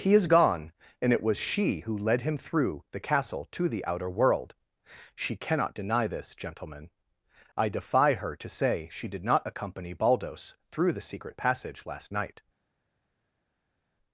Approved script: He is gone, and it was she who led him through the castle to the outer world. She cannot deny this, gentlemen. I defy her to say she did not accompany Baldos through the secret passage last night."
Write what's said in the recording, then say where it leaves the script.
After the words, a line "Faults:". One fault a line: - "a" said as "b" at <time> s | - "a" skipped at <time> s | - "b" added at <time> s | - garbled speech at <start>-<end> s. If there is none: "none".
He is gone, and it was she who led him through the castle to the outer world. She cannot deny this, gentlemen. I defy her to say she did not accompany Baldos through the secret passage last night."
Faults:
none